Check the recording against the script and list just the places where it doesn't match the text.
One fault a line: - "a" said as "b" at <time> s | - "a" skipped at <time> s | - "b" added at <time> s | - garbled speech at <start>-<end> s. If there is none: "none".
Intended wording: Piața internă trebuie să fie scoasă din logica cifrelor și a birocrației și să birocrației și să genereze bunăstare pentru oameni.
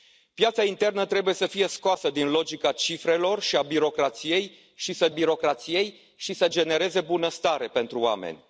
none